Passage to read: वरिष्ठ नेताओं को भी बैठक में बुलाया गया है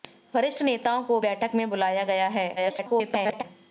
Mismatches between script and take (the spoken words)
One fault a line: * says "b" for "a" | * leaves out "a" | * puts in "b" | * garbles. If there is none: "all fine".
* leaves out "भी"
* garbles